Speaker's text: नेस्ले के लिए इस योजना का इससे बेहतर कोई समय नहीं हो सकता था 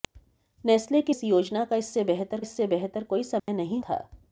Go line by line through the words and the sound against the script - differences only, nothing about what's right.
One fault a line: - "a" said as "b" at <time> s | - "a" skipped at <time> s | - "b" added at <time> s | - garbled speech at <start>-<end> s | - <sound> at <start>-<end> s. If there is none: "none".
- "लिए" skipped at 1.1 s
- "इससे बेहतर" added at 2.4 s
- dropout at 3.4-3.5 s
- "हो सकता" skipped at 3.8 s